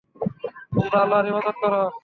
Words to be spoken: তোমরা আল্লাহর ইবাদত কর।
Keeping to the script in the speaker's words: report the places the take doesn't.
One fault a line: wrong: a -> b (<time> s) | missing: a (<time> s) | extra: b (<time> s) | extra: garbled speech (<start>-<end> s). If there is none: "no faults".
no faults